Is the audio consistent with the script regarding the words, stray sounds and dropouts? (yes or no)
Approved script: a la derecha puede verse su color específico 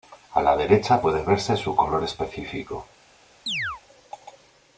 no